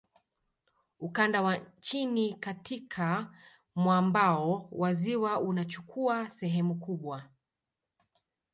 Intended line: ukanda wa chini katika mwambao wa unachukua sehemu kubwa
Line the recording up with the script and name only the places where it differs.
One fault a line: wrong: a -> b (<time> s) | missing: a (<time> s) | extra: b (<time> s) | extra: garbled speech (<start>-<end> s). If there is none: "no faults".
extra: ziwa (4.9 s)